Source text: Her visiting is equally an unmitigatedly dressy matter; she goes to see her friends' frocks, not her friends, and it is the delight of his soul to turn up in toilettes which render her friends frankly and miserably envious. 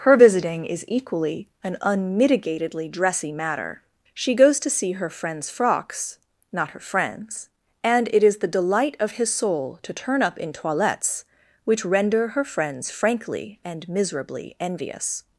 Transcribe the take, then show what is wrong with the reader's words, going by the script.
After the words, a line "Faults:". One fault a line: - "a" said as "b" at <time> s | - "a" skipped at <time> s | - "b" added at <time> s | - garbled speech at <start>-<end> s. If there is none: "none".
Her visiting is equally an unmitigatedly dressy matter; she goes to see her friends' frocks, not her friends, and it is the delight of his soul to turn up in toilettes which render her friends frankly and miserably envious.
Faults:
none